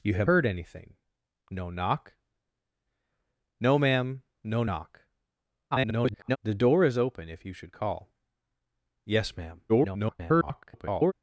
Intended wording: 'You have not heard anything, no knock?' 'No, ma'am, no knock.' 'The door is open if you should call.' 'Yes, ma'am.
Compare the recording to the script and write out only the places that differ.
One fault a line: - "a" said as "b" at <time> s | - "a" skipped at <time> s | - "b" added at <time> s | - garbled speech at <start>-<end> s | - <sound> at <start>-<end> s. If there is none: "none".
- "not" skipped at 0.3 s
- garbled speech at 5.7-6.4 s
- garbled speech at 9.7-11.1 s